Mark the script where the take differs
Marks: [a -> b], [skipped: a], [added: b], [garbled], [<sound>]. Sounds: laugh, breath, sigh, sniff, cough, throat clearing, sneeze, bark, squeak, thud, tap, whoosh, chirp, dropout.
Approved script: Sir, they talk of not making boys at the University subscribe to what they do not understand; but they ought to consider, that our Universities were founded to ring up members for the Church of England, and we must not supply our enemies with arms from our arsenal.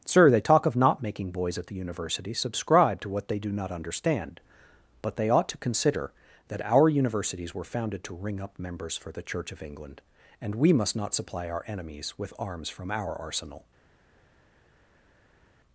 Sir, they talk of not making boys at the University subscribe to what they do not understand; but they ought to consider, that our Universities were founded to ring up members for the Church of England, and we must not supply our enemies with arms from our arsenal.